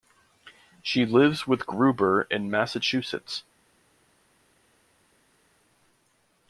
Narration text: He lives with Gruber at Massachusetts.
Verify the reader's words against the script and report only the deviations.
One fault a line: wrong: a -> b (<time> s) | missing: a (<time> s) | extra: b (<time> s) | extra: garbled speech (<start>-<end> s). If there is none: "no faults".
wrong: He -> She (0.8 s)
wrong: at -> in (2.3 s)